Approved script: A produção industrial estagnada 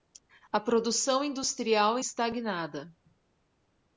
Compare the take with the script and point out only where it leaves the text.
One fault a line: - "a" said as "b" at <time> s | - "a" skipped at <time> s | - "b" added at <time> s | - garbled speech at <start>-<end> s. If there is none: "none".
none